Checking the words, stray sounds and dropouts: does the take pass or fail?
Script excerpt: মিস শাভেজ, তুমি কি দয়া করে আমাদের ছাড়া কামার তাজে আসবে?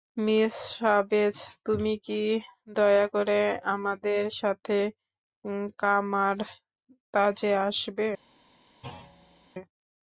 fail